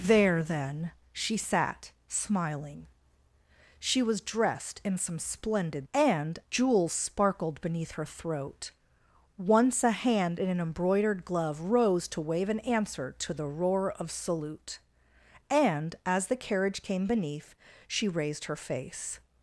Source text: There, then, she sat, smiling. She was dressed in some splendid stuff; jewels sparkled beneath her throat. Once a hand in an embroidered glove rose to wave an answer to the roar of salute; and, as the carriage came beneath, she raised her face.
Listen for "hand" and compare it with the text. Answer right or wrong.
right